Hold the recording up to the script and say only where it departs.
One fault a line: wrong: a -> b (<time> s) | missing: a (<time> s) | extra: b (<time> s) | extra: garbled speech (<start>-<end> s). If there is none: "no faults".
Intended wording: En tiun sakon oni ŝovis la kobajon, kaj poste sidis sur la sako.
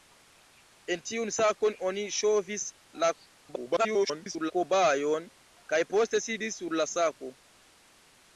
extra: garbled speech (3.4-4.5 s)